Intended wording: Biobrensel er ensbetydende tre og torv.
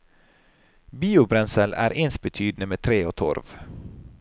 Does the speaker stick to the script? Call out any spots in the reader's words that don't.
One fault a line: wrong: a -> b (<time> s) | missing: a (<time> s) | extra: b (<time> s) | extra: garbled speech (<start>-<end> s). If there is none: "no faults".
extra: med (2.7 s)